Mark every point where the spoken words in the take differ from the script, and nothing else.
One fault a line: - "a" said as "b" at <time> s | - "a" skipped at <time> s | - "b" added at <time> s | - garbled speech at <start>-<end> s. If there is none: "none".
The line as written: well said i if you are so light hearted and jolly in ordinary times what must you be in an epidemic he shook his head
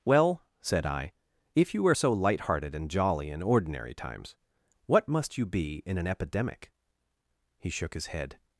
none